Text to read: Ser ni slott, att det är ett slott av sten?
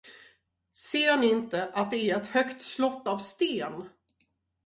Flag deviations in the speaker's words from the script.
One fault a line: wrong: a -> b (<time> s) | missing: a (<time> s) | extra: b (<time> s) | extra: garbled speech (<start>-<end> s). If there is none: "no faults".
wrong: slott -> inte (1.3 s)
extra: högt (2.3 s)